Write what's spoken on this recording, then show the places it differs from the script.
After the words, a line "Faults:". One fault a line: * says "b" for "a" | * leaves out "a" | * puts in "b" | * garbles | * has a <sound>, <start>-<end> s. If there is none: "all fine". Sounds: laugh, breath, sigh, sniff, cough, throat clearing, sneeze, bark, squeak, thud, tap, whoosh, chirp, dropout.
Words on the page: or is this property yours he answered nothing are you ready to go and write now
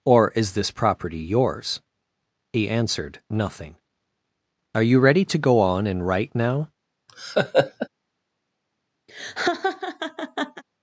or is this property yours he answered nothing are you ready to go on and write now
Faults:
* puts in "on"
* has a laugh, 7.1-7.9 s
* has a laugh, 9.1-10.6 s